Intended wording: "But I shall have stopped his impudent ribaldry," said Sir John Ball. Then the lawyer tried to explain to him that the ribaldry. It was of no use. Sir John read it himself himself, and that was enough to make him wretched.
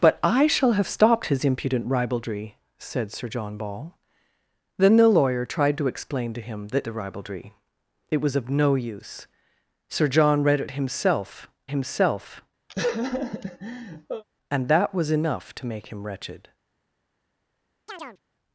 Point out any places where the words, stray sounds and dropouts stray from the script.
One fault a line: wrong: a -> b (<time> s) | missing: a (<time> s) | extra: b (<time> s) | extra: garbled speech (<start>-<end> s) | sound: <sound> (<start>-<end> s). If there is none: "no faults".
sound: laugh (12.7-14.2 s)
sound: chirp (17.9-18.2 s)